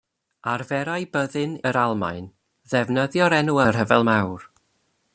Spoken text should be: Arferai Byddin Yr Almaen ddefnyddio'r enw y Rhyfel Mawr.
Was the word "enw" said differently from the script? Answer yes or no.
no